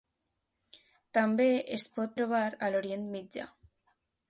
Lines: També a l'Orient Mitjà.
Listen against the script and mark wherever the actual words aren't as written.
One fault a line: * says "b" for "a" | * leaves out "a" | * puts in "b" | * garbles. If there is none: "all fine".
* puts in "es pot trobar"